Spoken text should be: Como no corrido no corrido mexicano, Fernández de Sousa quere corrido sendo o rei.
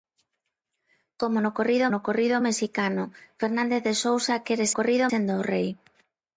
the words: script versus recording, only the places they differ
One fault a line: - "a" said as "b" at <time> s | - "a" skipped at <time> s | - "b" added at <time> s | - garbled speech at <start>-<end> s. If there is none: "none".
none